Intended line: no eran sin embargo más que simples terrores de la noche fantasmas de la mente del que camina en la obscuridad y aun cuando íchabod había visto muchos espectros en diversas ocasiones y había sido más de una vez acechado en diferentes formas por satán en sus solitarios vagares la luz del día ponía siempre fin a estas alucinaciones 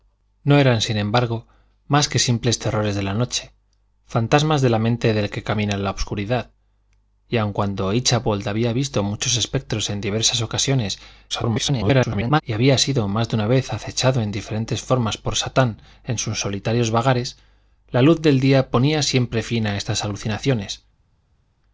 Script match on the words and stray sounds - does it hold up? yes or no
no